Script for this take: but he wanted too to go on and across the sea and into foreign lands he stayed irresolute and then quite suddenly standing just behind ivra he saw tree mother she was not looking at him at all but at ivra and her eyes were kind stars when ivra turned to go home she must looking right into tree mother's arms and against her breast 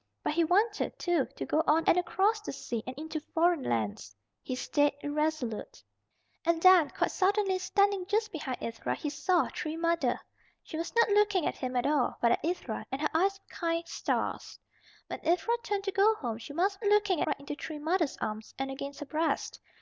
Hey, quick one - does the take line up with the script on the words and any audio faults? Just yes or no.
yes